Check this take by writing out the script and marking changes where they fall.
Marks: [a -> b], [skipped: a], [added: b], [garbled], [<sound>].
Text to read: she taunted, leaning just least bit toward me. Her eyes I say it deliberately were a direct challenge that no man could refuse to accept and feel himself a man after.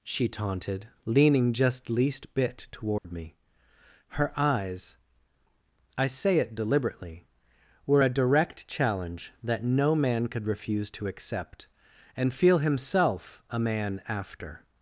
she taunted, leaning just least bit toward [dropout] me. Her eyes I say it deliberately were a direct challenge that no man could refuse to accept and feel himself a man after.